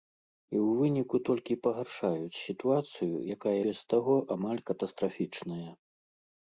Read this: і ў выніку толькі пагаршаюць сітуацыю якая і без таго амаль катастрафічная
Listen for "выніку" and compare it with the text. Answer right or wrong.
right